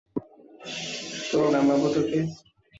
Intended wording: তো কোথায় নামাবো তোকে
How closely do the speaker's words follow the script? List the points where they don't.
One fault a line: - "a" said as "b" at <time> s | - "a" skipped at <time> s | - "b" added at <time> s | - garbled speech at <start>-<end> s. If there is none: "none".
- "কোথায়" skipped at 1.4 s